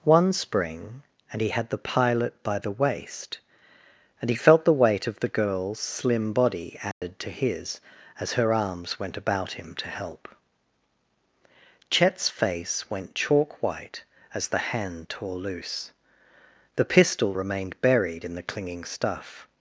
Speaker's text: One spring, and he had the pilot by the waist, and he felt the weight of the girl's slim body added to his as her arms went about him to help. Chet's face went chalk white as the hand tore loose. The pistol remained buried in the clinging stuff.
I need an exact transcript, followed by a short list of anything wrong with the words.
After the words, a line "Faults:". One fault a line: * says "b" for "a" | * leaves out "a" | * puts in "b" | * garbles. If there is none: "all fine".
One spring, and he had the pilot by the waist, and he felt the weight of the girl's slim body added to his as her arms went about him to help. Chet's face went chalk white as the hand tore loose. The pistol remained buried in the clinging stuff.
Faults:
all fine